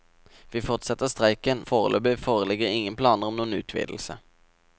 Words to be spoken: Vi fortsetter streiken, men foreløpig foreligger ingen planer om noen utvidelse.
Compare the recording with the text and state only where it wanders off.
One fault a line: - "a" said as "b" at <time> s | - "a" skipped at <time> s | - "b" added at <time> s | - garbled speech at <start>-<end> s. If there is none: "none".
- "men" skipped at 1.6 s